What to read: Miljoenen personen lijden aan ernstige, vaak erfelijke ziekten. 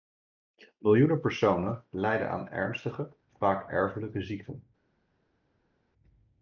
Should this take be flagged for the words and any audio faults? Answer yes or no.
no